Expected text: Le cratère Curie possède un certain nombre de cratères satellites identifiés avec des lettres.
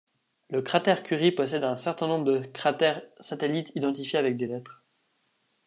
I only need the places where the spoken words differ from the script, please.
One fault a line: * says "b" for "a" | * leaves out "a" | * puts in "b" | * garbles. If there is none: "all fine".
all fine